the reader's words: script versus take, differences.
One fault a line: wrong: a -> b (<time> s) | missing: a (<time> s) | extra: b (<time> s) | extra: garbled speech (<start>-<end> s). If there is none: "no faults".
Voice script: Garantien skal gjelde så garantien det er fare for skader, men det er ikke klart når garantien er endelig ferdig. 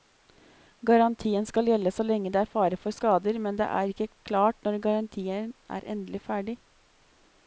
wrong: garantien -> lenge (2.1 s)